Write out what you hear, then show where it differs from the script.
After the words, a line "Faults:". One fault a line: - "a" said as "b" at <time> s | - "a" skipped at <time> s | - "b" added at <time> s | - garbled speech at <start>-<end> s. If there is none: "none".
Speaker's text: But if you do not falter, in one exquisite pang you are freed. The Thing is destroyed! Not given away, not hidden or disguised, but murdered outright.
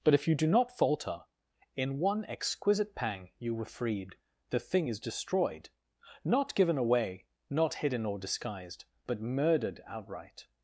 But if you do not falter, in one exquisite pang you were freed. The Thing is destroyed! Not given away, not hidden or disguised, but murdered outright.
Faults:
- "are" said as "were" at 3.5 s